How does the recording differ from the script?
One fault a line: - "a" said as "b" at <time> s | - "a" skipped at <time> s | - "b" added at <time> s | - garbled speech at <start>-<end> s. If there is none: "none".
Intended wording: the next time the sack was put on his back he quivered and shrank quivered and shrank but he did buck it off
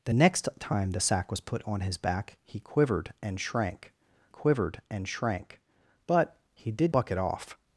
none